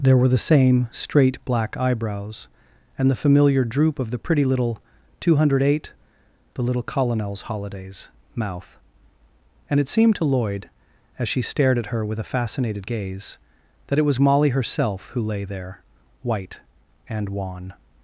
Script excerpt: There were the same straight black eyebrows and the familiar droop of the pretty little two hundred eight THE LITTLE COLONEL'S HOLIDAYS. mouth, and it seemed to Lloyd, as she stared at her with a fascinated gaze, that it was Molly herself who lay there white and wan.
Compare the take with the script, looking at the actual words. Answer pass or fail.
pass